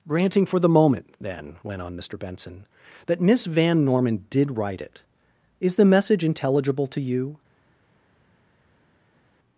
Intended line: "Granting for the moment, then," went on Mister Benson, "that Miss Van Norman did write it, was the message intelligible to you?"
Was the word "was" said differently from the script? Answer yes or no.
yes